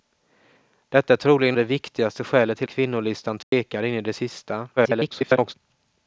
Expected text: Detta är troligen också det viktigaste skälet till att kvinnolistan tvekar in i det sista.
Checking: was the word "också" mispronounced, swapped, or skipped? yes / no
yes